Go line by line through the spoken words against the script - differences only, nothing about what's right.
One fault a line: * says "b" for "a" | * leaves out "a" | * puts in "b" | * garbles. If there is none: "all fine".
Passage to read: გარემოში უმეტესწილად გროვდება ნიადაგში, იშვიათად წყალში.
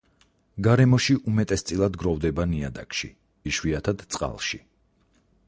all fine